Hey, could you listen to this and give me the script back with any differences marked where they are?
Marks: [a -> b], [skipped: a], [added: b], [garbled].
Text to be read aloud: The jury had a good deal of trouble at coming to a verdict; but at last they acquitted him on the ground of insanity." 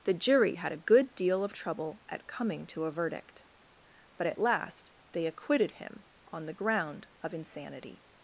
The jury had a good deal of trouble at coming to a verdict; but at last they acquitted him on the ground of insanity."